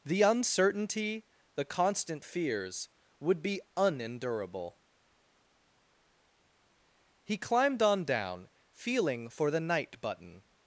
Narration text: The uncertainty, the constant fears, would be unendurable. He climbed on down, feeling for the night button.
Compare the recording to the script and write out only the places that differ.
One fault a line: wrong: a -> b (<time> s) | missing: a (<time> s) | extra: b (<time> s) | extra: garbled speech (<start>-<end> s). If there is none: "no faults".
no faults